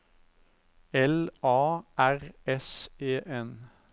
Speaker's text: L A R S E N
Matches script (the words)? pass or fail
pass